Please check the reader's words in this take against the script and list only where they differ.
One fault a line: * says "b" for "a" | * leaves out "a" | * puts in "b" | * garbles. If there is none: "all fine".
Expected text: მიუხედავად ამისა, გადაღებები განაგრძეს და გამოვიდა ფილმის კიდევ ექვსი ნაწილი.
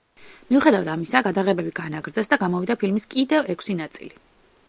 all fine